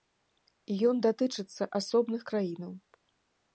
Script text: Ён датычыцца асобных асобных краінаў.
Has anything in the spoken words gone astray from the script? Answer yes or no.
yes